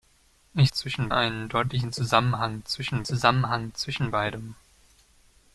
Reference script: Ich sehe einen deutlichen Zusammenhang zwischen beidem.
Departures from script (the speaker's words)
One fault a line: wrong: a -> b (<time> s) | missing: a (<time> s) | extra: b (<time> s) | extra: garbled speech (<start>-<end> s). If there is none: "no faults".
wrong: sehe -> zwischen (0.7 s)
extra: Zusammenhang zwischen (3.0 s)